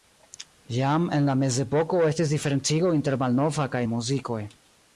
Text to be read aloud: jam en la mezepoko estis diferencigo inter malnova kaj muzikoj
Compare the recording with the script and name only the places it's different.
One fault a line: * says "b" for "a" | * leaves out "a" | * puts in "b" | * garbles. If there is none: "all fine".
all fine